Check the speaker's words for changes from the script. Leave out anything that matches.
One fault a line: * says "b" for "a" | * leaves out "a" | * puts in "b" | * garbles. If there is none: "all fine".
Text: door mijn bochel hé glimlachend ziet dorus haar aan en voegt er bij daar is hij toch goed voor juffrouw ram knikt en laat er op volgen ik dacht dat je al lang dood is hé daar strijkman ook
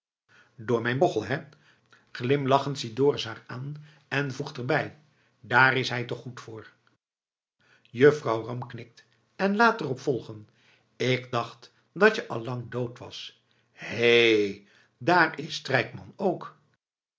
* says "was" for "is"
* puts in "is"